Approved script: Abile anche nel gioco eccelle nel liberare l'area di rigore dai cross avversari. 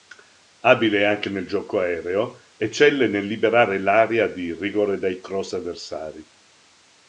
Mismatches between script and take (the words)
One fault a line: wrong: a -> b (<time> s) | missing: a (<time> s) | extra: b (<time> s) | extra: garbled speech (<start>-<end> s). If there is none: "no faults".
extra: aereo (1.8 s)